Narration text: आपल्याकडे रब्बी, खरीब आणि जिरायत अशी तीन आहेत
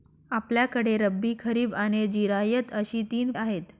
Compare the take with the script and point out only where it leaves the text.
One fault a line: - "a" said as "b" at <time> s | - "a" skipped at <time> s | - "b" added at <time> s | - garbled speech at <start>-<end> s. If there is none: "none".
none